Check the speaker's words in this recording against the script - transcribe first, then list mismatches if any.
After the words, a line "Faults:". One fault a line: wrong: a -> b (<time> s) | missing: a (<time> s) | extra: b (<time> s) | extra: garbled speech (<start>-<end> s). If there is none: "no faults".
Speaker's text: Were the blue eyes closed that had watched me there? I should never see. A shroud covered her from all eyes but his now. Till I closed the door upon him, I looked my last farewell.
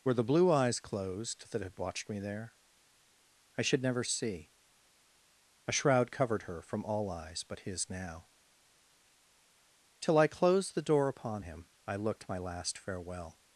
Were the blue eyes closed that had watched me there? I should never see. A shroud covered her from all eyes but his now. Till I closed the door upon him, I looked my last farewell.
Faults:
no faults